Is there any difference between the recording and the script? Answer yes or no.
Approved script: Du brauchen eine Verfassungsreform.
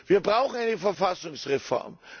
yes